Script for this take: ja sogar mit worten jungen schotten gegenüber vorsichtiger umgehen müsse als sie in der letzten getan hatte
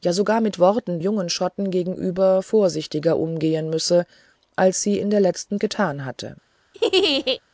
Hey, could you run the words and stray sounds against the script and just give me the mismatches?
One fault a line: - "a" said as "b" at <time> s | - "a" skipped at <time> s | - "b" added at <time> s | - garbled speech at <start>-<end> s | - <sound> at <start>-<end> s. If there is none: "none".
- laugh at 6.7-7.4 s